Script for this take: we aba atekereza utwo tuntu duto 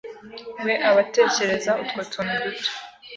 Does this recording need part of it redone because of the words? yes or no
no